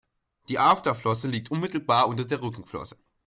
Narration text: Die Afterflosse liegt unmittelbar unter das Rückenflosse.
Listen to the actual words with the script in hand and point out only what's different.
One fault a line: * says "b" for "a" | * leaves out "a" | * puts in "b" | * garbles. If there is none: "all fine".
* says "der" for "das"